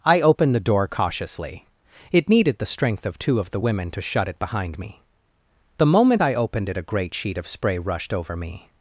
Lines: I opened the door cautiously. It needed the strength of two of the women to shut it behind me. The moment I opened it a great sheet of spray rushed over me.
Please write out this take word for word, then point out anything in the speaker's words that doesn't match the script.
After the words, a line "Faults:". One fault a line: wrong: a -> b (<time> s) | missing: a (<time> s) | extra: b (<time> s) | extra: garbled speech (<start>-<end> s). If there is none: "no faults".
I opened the door cautiously. It needed the strength of two of the women to shut it behind me. The moment I opened it a great sheet of spray rushed over me.
Faults:
no faults